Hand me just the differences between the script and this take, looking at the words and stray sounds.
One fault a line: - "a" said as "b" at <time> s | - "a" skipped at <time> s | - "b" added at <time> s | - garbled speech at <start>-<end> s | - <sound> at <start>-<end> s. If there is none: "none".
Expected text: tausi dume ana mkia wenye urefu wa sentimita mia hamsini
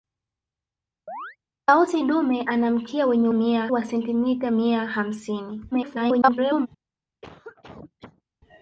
- chirp at 1.1-1.4 s
- "urefu" said as "mia" at 3.3 s
- garbled speech at 5.7-6.7 s
- cough at 7.2-8.2 s